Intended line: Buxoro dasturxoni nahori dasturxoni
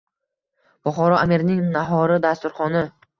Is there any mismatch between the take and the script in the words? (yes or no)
yes